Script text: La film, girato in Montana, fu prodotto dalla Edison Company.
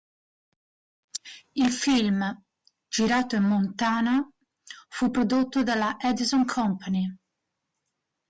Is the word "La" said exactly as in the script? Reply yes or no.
no